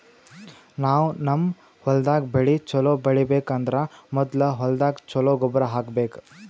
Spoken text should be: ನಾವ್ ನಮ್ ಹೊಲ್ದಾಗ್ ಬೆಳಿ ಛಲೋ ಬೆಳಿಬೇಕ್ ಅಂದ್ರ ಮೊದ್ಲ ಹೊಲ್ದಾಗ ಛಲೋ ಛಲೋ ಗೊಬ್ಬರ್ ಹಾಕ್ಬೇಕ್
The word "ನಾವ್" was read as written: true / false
true